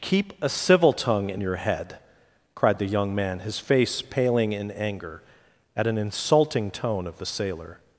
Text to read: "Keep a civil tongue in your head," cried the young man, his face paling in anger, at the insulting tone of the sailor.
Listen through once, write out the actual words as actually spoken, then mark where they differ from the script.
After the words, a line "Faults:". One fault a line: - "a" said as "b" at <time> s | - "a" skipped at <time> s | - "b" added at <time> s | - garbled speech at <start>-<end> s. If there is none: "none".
"Keep a civil tongue in your head," cried the young man, his face paling in anger, at an insulting tone of the sailor.
Faults:
- "the" said as "an" at 5.9 s